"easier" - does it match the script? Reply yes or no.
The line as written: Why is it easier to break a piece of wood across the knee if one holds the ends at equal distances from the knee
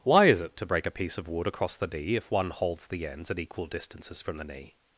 no